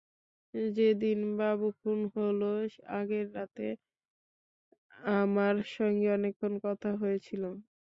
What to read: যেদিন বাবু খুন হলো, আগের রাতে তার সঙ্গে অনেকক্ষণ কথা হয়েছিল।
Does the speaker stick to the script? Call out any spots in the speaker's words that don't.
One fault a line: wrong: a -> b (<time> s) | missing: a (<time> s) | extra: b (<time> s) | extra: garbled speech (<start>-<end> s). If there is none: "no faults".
wrong: তার -> আমার (5.2 s)